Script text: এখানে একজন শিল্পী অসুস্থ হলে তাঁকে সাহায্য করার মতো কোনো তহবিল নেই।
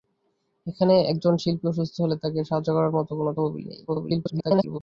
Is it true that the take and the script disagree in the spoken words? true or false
true